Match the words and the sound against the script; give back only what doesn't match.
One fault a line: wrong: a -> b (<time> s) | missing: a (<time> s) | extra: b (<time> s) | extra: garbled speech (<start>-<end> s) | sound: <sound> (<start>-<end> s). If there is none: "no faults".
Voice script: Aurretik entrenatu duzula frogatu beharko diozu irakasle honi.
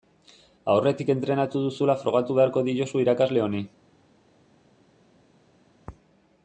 no faults